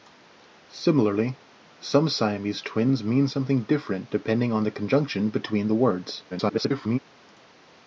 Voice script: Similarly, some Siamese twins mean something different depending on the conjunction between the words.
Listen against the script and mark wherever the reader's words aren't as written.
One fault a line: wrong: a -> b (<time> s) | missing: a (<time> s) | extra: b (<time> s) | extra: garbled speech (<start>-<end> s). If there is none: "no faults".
extra: garbled speech (6.3-7.0 s)